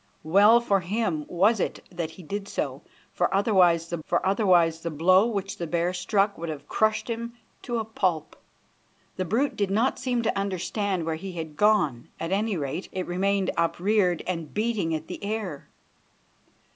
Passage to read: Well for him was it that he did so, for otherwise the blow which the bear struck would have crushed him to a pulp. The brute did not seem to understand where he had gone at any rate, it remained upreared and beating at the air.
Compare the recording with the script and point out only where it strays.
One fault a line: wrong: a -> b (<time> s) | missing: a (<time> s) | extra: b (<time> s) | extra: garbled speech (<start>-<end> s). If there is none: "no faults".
extra: for otherwise the (4.0 s)